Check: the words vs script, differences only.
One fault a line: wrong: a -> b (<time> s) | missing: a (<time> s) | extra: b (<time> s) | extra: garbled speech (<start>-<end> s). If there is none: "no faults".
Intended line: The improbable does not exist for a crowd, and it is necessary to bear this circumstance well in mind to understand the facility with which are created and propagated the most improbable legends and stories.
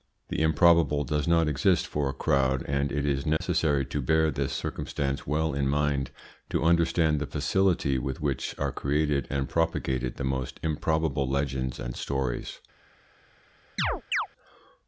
no faults